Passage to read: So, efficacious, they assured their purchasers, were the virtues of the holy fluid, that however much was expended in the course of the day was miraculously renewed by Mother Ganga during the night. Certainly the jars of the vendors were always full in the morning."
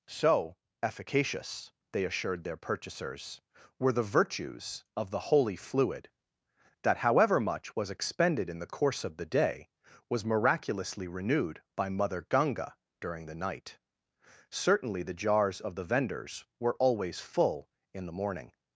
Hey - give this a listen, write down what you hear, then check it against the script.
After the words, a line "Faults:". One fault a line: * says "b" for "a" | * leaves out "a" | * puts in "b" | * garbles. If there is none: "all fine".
So, efficacious, they assured their purchasers, were the virtues of the holy fluid, that however much was expended in the course of the day was miraculously renewed by Mother Ganga during the night. Certainly the jars of the vendors were always full in the morning."
Faults:
all fine